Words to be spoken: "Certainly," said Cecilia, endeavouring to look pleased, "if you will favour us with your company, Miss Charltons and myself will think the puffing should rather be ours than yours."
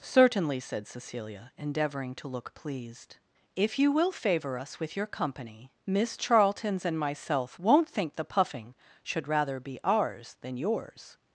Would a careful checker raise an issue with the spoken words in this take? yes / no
yes